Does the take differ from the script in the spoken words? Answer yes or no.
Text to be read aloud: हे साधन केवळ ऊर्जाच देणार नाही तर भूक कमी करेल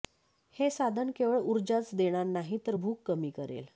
no